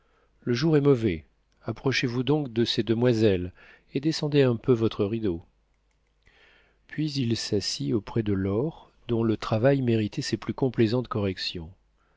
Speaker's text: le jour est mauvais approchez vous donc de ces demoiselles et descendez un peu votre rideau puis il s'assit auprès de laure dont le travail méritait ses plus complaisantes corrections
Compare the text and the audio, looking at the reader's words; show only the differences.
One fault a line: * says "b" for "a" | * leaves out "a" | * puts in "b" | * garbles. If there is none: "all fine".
all fine